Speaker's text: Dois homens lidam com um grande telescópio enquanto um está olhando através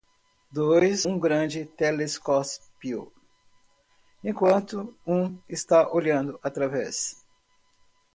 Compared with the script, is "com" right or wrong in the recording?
wrong